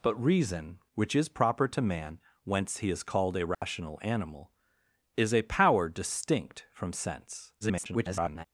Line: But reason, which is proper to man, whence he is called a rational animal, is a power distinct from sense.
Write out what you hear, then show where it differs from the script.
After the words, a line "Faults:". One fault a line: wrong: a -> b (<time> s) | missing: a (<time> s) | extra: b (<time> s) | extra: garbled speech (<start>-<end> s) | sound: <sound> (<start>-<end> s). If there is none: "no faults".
But reason, which is proper to man, whence he is called a rational animal, is a power distinct from sense. [garbled]
Faults:
sound: dropout (3.5-3.6 s)
extra: garbled speech (7.6-8.5 s)